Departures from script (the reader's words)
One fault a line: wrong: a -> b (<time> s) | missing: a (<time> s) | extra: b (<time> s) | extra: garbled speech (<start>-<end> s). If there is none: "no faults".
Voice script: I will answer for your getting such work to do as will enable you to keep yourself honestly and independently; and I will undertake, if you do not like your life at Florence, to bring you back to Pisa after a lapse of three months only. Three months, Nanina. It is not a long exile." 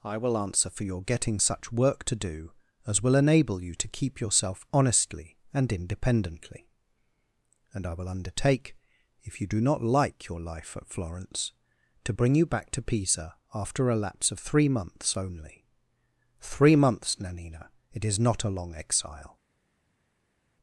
no faults